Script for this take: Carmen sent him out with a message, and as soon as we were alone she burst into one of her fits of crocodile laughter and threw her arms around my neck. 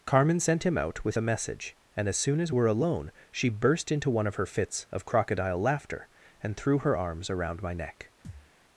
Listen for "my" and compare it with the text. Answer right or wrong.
right